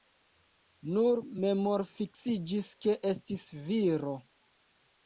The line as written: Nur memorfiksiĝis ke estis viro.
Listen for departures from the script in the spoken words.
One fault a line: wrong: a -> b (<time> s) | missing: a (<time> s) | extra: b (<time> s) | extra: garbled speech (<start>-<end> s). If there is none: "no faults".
no faults